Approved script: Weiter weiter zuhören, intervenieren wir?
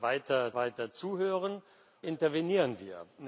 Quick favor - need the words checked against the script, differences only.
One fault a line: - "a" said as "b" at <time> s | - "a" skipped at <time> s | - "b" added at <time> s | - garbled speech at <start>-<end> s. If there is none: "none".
none